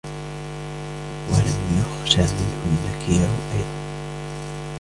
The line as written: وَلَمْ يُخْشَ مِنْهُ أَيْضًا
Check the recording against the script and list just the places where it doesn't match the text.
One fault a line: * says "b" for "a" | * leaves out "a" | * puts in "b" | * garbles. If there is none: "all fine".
* puts in "النَّكِيرُ"